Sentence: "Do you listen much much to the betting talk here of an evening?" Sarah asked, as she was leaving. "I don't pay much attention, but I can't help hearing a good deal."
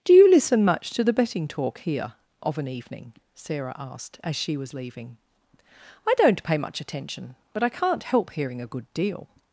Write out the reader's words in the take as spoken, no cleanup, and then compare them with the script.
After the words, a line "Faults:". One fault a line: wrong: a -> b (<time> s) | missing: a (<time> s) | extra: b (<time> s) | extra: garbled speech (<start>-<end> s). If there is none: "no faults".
"Do you listen much to the betting talk here of an evening?" Sarah asked, as she was leaving. "I don't pay much attention, but I can't help hearing a good deal."
Faults:
missing: much (0.9 s)